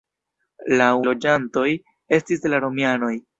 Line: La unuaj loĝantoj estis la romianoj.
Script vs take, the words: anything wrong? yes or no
yes